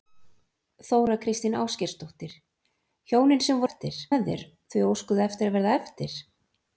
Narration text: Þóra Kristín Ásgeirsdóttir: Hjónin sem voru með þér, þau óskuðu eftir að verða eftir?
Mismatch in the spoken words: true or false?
true